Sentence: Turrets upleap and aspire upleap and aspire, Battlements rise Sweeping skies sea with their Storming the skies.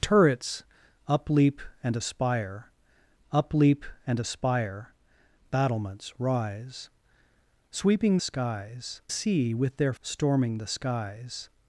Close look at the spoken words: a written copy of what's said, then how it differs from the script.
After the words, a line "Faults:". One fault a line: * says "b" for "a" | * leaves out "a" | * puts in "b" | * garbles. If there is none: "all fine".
Turrets upleap and aspire upleap and aspire, Battlements rise Sweeping skies sea with their Storming the skies.
Faults:
all fine